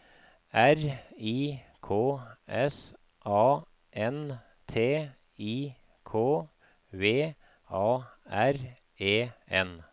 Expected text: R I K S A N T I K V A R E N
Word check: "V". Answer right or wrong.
right